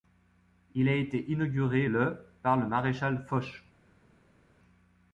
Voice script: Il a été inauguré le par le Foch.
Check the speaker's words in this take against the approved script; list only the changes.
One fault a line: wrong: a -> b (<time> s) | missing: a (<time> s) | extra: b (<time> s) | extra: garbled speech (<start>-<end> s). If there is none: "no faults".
extra: maréchal (2.7 s)